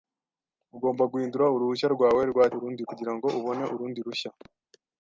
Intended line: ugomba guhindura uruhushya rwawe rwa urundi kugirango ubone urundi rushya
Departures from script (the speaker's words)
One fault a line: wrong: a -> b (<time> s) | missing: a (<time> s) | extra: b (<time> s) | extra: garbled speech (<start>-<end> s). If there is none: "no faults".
no faults